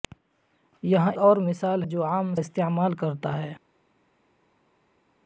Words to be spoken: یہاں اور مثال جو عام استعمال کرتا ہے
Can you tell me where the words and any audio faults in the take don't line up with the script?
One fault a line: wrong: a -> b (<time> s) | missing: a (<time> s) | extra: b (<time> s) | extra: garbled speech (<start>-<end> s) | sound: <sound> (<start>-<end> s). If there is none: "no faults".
no faults